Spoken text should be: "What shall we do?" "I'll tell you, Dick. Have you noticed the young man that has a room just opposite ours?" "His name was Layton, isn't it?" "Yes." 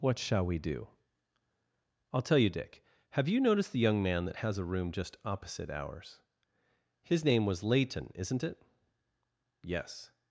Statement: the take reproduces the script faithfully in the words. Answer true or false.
true